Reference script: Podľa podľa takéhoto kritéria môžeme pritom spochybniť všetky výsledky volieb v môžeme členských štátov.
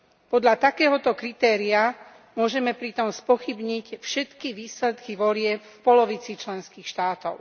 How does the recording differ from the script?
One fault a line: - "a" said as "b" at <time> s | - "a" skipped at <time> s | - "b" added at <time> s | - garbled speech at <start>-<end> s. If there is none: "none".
- "podľa" skipped at 0.6 s
- "môžeme" said as "polovici" at 5.8 s